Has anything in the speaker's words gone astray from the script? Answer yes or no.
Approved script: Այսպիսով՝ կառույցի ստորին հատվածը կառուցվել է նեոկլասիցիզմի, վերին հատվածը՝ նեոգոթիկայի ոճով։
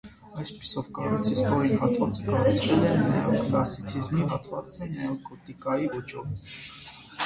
yes